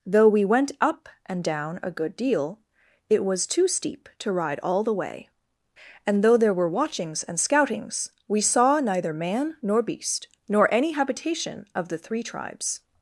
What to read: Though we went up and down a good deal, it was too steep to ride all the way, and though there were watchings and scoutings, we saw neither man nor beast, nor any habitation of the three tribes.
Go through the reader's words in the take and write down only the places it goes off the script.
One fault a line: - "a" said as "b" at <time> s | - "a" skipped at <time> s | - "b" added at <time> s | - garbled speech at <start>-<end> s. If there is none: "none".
none